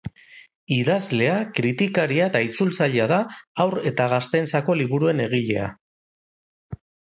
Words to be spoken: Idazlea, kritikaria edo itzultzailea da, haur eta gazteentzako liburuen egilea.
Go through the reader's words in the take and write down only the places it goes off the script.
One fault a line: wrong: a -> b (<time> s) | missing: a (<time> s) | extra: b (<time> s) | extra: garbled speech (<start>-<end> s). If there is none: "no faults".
wrong: edo -> eta (2.3 s)